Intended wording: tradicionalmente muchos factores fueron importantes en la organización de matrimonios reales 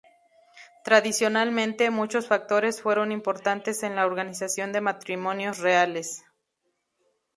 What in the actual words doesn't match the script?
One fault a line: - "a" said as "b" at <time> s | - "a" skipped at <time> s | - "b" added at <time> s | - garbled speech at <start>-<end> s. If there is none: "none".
none